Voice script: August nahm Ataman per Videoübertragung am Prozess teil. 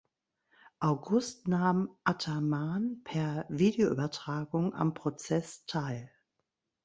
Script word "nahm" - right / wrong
right